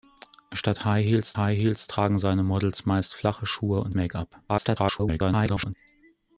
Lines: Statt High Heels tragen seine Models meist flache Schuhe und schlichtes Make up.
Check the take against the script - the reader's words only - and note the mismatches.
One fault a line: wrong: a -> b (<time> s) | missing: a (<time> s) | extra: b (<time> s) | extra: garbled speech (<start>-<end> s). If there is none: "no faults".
extra: High Heels (1.3 s)
missing: schlichtes (4.0 s)
extra: garbled speech (4.5-5.7 s)